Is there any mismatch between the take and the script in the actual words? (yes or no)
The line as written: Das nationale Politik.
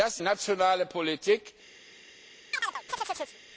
no